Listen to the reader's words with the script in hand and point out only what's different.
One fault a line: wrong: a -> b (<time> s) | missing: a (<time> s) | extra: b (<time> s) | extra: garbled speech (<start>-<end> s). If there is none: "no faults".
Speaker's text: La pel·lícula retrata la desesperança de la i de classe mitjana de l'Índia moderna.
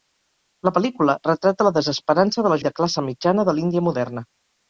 no faults